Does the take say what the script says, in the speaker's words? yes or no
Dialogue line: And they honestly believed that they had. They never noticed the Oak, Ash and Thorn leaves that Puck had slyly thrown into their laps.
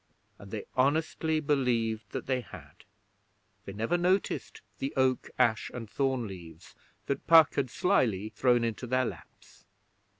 yes